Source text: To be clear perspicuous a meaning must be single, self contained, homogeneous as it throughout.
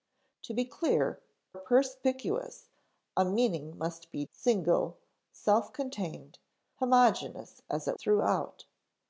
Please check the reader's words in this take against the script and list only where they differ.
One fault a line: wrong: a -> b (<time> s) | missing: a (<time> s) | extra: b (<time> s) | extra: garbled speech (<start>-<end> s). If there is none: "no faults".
no faults